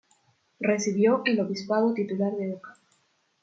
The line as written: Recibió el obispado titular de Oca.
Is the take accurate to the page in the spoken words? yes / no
yes